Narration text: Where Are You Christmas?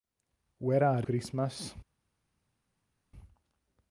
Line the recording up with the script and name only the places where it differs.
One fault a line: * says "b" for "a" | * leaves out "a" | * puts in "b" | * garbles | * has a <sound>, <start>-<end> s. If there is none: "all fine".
* leaves out "You"